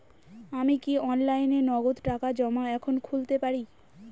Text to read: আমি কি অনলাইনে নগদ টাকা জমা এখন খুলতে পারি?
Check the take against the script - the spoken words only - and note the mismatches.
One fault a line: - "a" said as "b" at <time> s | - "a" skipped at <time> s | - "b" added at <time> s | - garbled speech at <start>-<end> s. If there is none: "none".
none